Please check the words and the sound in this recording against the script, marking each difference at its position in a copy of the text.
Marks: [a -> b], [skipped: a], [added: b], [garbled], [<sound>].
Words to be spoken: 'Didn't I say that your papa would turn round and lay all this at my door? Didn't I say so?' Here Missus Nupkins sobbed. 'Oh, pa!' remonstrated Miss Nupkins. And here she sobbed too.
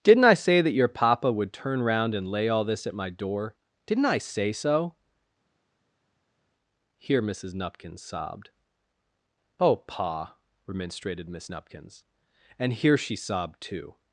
'Didn't I say that your papa would turn round and lay all this at my door? Didn't I say so?' Here Missus Nupkins sobbed. 'Oh, pa!' remonstrated Miss Nupkins. And here she sobbed too.